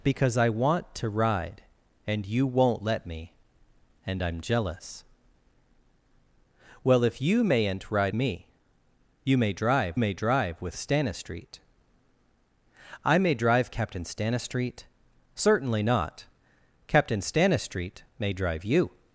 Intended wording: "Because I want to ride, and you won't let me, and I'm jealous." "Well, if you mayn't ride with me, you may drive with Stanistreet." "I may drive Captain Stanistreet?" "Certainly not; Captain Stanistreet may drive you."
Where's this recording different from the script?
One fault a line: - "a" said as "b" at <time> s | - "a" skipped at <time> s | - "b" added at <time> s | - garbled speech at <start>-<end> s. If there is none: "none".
- "with" skipped at 8.2 s
- "may drive" added at 10.0 s